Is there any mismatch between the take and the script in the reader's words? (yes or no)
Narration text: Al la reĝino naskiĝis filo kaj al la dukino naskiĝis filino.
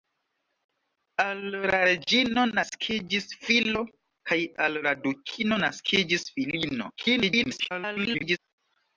yes